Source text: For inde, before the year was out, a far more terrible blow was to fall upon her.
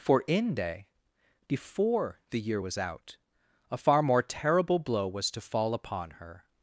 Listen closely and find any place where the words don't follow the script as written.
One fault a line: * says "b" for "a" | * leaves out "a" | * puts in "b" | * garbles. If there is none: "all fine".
all fine